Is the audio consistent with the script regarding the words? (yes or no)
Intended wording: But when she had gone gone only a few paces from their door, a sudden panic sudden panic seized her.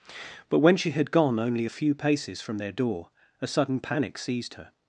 no